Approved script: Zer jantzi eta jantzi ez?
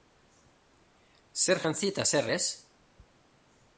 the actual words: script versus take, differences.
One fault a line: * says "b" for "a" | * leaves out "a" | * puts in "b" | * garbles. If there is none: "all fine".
* says "zer" for "jantzi"